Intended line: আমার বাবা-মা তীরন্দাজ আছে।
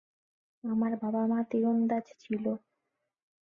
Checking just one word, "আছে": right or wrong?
wrong